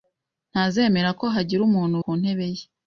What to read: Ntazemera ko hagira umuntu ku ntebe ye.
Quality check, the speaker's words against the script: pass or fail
pass